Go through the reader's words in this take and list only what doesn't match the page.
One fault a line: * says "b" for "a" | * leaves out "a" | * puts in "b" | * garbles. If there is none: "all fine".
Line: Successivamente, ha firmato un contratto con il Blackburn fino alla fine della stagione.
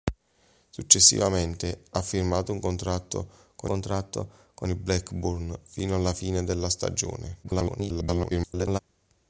* puts in "contratto con"
* garbles